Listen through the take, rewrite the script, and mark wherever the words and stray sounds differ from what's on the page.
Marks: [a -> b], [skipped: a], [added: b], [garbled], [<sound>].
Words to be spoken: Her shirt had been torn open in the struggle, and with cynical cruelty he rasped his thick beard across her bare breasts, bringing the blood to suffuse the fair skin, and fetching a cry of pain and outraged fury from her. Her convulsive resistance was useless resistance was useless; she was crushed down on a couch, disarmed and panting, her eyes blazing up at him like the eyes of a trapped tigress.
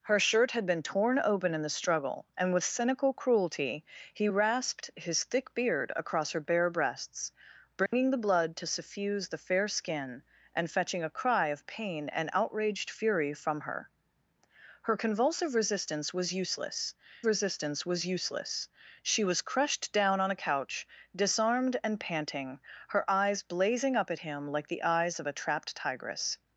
Her shirt had been torn open in the struggle, and with cynical cruelty he rasped his thick beard across her bare breasts, bringing [dropout] the blood to suffuse the fair skin, and fetching a cry of pain and outraged fury from her. Her convulsive resistance was useless resistance was useless; she was crushed down on a couch, disarmed and panting, her eyes blazing up at him like the eyes of a trapped tigress.